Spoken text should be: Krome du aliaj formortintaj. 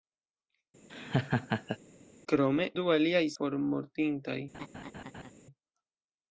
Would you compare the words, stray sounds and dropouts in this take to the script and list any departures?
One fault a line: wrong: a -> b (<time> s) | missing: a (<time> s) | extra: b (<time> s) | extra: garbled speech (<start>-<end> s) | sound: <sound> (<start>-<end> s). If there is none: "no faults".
sound: laugh (0.9-1.8 s)
sound: laugh (4.5-5.3 s)